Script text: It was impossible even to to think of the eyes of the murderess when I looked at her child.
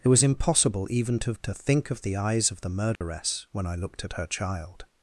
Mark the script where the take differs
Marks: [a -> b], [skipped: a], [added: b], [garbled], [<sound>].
It was impossible even to to think of the eyes of the murderess [dropout] when I looked at her child.